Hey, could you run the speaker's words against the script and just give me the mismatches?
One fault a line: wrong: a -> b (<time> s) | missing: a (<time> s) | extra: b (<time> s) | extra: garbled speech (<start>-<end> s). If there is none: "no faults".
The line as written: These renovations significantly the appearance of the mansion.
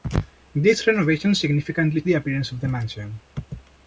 no faults